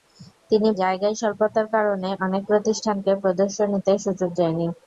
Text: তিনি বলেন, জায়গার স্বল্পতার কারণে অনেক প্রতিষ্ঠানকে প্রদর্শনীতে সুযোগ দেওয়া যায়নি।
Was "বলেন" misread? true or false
true